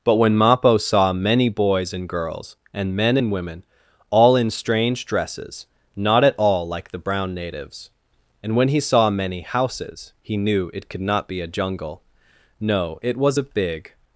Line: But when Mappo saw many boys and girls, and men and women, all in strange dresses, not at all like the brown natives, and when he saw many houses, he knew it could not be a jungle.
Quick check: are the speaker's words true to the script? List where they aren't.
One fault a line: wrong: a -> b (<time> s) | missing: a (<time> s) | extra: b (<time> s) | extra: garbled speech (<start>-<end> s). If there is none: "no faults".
extra: No it was a big (12.6 s)